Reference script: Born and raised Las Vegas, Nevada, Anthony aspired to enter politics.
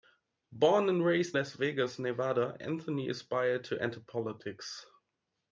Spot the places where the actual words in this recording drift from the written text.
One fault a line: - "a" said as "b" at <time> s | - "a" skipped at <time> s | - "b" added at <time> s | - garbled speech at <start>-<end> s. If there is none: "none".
none